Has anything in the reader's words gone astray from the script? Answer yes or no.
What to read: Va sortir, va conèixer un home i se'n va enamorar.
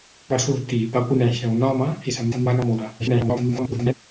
yes